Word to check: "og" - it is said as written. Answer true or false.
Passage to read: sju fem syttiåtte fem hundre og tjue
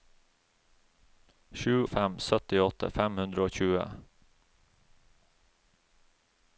true